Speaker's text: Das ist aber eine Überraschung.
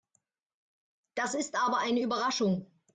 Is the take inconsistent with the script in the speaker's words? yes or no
no